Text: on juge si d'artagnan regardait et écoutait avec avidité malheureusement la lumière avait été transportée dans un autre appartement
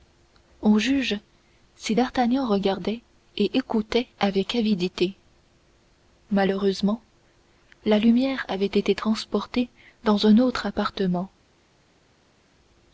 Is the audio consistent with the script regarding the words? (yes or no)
yes